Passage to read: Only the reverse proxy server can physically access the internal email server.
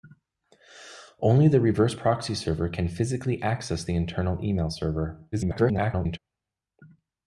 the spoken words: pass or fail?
fail